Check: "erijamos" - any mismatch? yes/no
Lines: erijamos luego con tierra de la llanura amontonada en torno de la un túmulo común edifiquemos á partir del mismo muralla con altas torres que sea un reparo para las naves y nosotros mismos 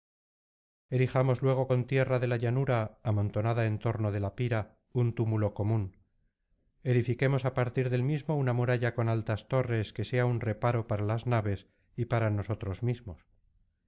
no